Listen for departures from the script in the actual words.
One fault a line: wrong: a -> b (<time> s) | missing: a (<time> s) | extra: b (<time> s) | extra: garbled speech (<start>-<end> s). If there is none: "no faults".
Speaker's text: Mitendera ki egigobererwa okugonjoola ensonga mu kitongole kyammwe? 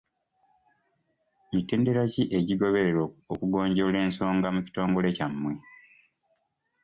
no faults